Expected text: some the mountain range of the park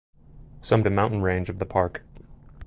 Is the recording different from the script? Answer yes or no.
no